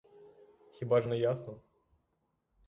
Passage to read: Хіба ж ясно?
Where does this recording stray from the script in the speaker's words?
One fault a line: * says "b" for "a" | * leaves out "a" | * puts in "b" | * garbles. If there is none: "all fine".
* puts in "не"